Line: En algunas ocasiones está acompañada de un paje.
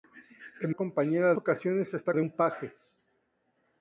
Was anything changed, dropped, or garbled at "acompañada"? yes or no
yes